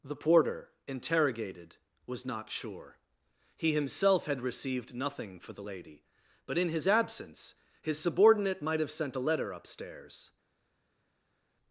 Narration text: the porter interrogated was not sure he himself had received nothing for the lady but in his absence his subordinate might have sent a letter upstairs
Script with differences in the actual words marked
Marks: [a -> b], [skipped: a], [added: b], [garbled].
the porter interrogated was not sure he himself had received nothing for the lady but in his absence his subordinate might have sent a letter upstairs